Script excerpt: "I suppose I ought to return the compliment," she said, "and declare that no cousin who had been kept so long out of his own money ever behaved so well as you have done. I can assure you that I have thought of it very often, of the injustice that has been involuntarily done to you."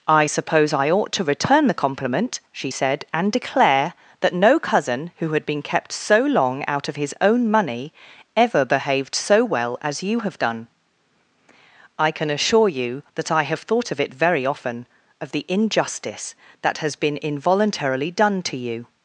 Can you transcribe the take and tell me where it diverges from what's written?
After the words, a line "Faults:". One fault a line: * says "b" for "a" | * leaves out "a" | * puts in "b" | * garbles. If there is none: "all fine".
"I suppose I ought to return the compliment," she said, "and declare that no cousin who had been kept so long out of his own money ever behaved so well as you have done. I can assure you that I have thought of it very often, of the injustice that has been involuntarily done to you."
Faults:
all fine